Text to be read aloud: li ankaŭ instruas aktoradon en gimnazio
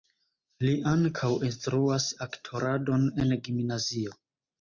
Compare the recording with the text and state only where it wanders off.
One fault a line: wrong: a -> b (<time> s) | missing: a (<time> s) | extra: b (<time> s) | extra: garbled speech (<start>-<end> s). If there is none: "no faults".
no faults